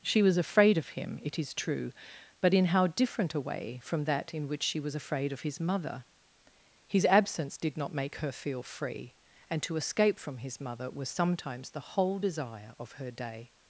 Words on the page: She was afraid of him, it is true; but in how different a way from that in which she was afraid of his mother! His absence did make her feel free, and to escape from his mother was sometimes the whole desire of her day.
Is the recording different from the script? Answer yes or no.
yes